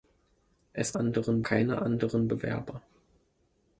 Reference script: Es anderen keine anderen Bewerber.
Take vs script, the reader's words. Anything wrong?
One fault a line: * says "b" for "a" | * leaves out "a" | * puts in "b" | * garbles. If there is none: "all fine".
all fine